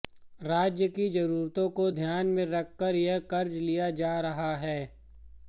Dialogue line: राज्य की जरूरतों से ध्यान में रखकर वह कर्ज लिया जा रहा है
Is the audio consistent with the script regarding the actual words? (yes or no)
no